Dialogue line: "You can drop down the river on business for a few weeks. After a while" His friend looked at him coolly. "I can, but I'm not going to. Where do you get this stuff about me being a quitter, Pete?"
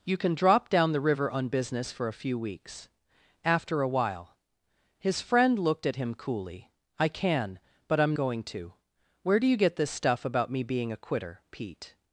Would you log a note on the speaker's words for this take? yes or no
yes